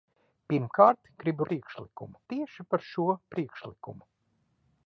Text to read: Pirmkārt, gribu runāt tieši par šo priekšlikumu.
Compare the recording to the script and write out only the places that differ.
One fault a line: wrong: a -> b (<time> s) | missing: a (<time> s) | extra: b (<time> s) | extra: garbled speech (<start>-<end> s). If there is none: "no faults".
wrong: runāt -> priekšlikumu (1.5 s)